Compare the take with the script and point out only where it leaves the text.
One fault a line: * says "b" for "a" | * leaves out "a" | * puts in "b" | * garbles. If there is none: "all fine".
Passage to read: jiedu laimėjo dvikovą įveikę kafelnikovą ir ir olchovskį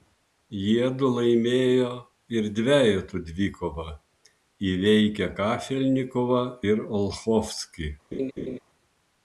* puts in "ir dvejetų"
* leaves out "ir"